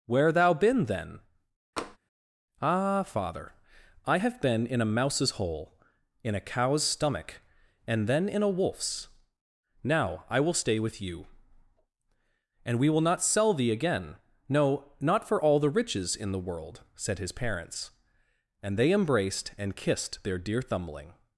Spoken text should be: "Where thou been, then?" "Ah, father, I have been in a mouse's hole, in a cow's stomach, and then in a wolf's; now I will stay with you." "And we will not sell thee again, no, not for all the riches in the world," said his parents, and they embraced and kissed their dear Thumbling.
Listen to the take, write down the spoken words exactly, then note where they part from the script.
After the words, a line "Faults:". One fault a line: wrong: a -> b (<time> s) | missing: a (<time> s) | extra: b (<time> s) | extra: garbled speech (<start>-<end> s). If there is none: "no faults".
"Where thou been, then?" "Ah, father, I have been in a mouse's hole, in a cow's stomach, and then in a wolf's; now I will stay with you." "And we will not sell thee again, no, not for all the riches in the world," said his parents, and they embraced and kissed their dear Thumbling.
Faults:
no faults